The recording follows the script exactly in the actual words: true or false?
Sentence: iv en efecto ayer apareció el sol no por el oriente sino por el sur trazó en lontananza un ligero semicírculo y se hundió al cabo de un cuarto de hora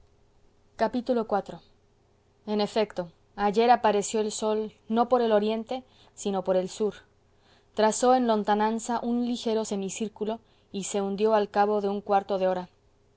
true